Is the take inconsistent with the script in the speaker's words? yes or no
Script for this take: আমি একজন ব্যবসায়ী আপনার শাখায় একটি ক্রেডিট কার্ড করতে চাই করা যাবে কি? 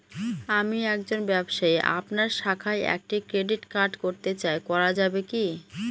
no